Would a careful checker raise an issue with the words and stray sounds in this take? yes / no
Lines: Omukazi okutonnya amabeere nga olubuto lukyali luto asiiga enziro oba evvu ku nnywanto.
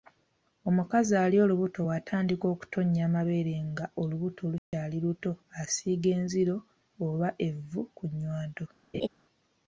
yes